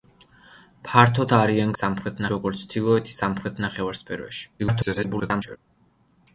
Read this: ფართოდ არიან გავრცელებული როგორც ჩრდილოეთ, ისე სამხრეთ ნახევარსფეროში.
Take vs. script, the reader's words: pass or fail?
fail